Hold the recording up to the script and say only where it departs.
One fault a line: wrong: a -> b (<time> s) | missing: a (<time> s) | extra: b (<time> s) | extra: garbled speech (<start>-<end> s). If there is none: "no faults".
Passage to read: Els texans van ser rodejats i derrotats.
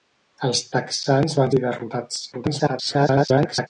missing: ser rodejats (1.5 s)
extra: garbled speech (2.3-3.7 s)